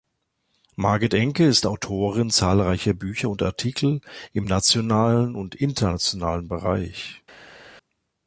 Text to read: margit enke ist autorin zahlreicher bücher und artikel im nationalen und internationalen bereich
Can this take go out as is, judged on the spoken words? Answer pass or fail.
pass